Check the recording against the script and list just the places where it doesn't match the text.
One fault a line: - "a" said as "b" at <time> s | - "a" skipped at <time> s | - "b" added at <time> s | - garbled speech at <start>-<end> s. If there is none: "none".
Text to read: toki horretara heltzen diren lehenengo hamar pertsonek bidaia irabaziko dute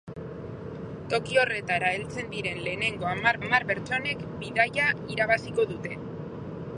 - "hamar" added at 3.4 s